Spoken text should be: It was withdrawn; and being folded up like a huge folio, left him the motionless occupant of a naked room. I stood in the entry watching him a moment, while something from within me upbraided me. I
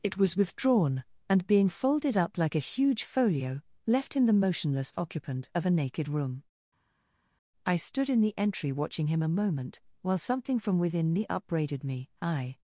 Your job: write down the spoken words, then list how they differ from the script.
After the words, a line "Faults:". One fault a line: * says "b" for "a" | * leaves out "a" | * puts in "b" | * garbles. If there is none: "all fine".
It was withdrawn; and being folded up like a huge folio, left him the motionless occupant of a naked room. I stood in the entry watching him a moment, while something from within me upbraided me. I
Faults:
all fine